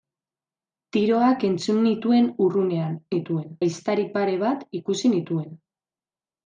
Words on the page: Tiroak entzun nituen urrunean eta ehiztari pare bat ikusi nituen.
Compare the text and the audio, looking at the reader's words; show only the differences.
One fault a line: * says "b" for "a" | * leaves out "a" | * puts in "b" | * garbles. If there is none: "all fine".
* says "nituen" for "eta"